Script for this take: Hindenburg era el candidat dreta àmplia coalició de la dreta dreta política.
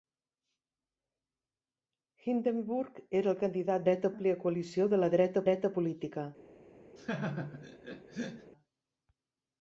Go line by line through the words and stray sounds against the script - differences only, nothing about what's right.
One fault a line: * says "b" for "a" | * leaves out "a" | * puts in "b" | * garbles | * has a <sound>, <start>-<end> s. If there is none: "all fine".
* has a laugh, 7.0-8.5 s